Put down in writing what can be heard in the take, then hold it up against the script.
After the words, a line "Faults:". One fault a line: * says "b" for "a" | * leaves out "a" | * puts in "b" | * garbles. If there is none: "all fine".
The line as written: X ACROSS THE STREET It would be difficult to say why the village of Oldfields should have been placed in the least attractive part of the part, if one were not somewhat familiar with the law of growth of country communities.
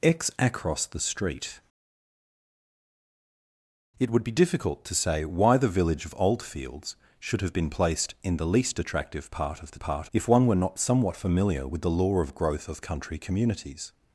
X ACROSS THE STREET It would be difficult to say why the village of Oldfields should have been placed in the least attractive part of the part, if one were not somewhat familiar with the law of growth of country communities.
Faults:
all fine